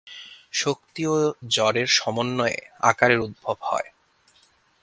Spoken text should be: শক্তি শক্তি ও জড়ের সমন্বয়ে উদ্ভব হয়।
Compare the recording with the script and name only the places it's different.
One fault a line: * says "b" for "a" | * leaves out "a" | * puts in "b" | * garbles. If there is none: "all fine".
* leaves out "শক্তি"
* puts in "আকারের"